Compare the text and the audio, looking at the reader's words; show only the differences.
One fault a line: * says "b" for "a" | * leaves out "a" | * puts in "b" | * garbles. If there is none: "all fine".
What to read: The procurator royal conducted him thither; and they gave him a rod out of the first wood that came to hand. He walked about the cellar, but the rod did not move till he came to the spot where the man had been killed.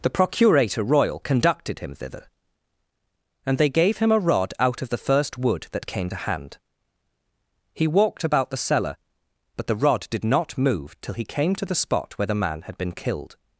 all fine